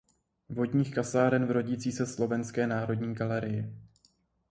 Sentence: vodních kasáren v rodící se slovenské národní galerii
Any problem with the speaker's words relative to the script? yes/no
no